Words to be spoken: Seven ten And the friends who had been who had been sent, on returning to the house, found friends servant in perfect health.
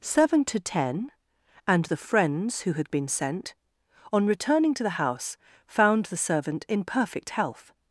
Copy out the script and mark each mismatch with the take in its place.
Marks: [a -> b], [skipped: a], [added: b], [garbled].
Seven [added: to] ten And the friends who had been [skipped: who had been] sent, on returning to the house, found [friends -> the] servant in perfect health.